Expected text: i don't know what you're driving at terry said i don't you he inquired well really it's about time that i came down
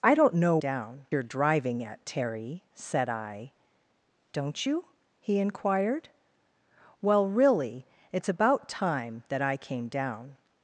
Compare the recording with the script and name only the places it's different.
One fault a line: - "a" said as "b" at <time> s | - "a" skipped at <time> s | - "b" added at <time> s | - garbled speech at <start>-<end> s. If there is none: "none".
- "what" said as "down" at 0.6 s